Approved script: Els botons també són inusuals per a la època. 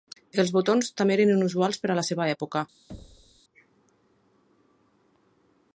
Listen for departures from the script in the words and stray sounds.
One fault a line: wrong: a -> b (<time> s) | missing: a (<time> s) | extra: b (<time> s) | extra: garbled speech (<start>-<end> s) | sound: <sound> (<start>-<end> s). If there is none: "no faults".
wrong: són -> eren (1.2 s)
extra: seva (2.1 s)
sound: thud (2.9-3.4 s)